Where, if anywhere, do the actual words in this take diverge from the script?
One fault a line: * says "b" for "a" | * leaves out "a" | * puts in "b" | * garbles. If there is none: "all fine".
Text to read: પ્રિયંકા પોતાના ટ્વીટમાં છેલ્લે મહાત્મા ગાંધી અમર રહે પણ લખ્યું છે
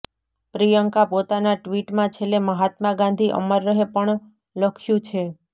all fine